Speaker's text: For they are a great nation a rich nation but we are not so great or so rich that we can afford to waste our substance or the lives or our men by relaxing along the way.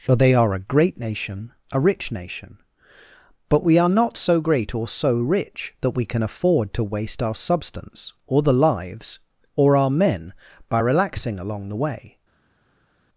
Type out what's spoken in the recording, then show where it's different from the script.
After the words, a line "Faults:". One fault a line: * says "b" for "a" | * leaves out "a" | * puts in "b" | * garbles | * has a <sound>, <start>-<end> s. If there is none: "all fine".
For they are a great nation a rich nation but we are not so great or so rich that we can afford to waste our substance or the lives or our men by relaxing along the way.
Faults:
all fine